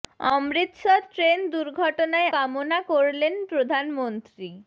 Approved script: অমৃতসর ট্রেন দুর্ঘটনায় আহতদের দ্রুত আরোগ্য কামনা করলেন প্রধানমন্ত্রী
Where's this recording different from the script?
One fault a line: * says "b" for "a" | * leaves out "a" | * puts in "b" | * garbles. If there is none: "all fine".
* leaves out "আহতদের দ্রুত আরোগ্য"